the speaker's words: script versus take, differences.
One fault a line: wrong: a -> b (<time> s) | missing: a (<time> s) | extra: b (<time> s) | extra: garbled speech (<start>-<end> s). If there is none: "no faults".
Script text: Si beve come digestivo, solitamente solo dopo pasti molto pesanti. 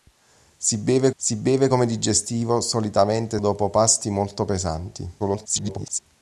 extra: si beve (1.2 s)
missing: solo (3.4 s)
extra: garbled speech (5.2-6.0 s)